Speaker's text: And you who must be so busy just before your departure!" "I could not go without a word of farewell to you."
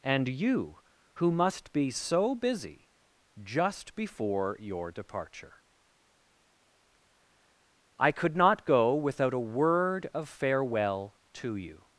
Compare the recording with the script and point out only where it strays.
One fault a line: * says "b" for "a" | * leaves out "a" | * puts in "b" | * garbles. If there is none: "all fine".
all fine